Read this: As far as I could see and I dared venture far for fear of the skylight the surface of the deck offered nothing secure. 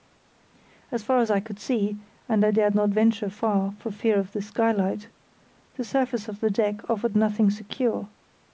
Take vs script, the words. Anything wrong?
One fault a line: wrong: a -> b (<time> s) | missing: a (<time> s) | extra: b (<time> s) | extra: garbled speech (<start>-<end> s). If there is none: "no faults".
extra: not (2.7 s)